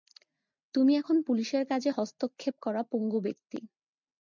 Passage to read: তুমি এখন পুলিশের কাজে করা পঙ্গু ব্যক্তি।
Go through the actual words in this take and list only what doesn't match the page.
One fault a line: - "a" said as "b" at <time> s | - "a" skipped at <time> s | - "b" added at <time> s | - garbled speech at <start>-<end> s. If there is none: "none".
- "হস্তক্ষেপ" added at 1.9 s